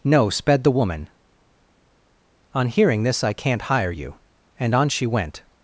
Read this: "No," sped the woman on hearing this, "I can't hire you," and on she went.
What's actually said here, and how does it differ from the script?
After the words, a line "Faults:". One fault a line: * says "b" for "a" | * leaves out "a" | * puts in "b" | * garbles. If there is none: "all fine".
"No," sped the woman on hearing this, "I can't hire you," and on she went.
Faults:
all fine